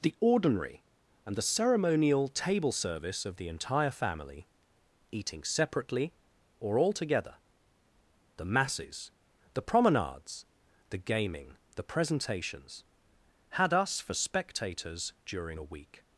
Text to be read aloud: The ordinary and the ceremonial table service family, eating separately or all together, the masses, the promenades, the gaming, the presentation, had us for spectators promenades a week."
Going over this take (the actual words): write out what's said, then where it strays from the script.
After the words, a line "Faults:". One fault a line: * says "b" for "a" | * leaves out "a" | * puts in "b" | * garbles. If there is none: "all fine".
The ordinary and the ceremonial table service of the entire family, eating separately or all together, the masses, the promenades, the gaming, the presentations, had us for spectators during a week."
Faults:
* puts in "of the entire"
* says "presentations" for "presentation"
* says "during" for "promenades"